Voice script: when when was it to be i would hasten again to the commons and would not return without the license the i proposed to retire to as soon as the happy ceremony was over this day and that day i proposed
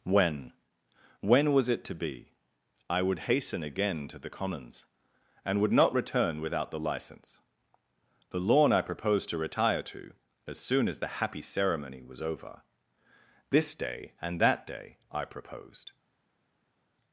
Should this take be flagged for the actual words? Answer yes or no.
yes